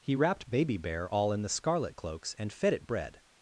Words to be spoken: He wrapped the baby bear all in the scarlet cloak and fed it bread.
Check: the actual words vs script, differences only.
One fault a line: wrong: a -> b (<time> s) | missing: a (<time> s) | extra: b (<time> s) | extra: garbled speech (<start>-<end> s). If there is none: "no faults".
missing: the (0.5 s)
wrong: cloak -> cloaks (1.9 s)